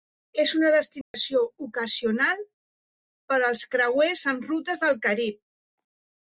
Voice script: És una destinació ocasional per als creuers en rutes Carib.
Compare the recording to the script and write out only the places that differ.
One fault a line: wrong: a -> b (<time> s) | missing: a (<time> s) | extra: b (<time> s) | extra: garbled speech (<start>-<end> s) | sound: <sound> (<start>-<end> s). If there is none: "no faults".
sound: dropout (1.0-1.1 s)
extra: del (4.9 s)